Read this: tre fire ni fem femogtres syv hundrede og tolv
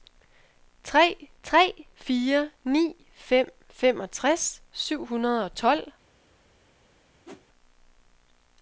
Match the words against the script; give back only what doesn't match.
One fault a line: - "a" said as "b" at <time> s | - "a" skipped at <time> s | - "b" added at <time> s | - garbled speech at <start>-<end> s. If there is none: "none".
- "tre" added at 1.4 s